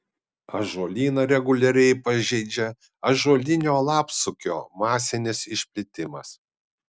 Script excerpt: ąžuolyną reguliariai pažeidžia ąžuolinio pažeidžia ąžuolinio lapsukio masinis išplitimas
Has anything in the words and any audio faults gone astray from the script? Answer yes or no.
yes